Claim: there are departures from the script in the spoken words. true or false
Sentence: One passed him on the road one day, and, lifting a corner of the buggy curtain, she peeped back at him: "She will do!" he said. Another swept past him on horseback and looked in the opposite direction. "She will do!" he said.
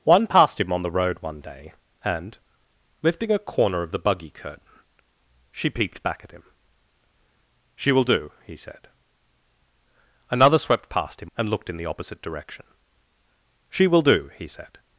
true